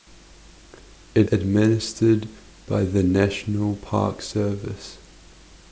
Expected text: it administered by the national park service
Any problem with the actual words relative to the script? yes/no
no